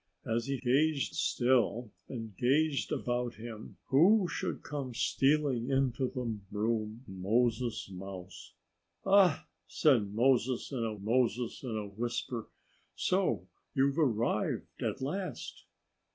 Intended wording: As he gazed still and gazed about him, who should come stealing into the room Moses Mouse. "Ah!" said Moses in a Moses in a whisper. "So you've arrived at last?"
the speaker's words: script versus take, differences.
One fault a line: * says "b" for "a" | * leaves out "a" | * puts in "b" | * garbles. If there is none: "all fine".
all fine